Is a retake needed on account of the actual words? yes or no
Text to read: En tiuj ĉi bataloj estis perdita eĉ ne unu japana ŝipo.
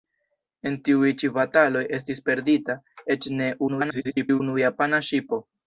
yes